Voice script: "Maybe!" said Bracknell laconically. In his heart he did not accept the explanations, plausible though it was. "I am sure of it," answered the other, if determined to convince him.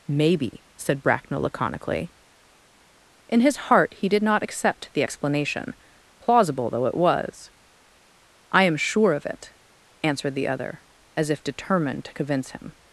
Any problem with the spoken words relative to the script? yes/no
yes